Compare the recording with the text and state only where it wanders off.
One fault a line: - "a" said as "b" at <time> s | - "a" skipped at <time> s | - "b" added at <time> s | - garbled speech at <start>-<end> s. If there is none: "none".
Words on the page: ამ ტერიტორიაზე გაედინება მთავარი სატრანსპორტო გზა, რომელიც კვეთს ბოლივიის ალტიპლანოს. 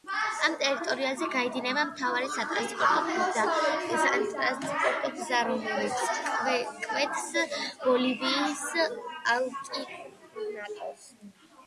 none